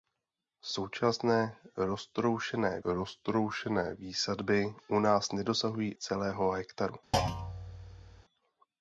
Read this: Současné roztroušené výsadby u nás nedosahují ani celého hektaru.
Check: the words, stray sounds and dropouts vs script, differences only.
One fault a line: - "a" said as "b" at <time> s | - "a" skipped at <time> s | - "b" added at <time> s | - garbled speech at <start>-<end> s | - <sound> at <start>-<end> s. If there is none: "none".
- "roztroušené" added at 2.8 s
- "ani" skipped at 6.0 s
- thud at 7.1-8.2 s